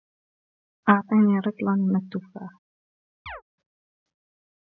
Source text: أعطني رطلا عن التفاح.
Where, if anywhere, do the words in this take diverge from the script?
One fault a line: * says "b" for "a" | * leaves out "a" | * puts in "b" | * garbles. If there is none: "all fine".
* says "من" for "عن"